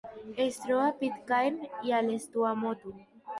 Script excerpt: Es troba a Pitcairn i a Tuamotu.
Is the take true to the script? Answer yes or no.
no